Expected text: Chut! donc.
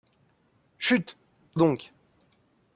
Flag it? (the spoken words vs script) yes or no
no